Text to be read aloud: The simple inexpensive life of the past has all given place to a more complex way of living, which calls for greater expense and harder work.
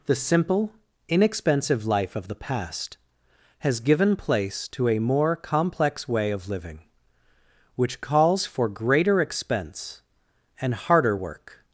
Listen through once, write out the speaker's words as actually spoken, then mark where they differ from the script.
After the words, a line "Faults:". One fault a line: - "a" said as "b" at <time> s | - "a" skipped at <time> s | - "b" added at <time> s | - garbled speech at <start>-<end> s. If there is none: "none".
The simple inexpensive life of the past has given place to a more complex way of living, which calls for greater expense and harder work.
Faults:
- "all" skipped at 3.8 s